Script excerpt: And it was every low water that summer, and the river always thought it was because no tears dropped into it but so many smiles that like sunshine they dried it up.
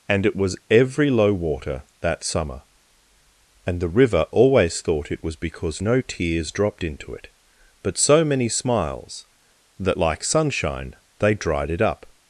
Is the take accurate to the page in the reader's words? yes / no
yes